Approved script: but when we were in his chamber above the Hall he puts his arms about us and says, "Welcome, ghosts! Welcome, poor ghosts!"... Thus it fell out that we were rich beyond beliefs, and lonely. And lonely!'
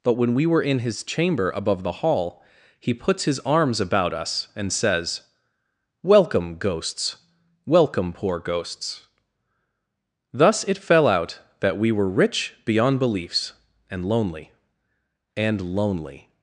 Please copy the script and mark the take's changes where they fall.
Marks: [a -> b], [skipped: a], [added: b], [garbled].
but when we were in his chamber above the Hall he puts his arms about us and says, "Welcome, ghosts! Welcome, poor ghosts!"... Thus it fell out that we were rich beyond beliefs, and lonely. And lonely!'